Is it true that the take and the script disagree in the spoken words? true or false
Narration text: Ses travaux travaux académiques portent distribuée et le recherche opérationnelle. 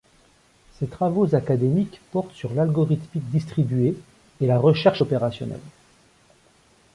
true